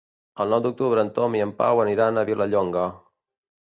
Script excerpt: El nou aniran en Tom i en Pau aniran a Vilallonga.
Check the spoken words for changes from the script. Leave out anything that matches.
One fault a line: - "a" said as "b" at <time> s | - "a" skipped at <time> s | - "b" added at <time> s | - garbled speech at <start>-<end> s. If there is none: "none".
- "aniran" said as "d'octubre" at 0.7 s